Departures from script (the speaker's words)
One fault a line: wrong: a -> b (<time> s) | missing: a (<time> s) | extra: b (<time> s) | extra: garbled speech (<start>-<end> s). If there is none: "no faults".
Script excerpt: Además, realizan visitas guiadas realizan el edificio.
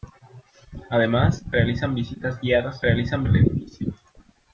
no faults